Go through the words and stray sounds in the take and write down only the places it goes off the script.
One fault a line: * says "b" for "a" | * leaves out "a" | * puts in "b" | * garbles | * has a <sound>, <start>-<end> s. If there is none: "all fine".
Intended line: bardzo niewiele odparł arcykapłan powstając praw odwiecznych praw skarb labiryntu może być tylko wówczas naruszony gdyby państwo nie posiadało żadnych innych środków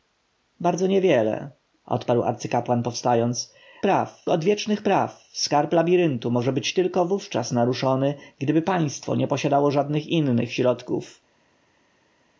all fine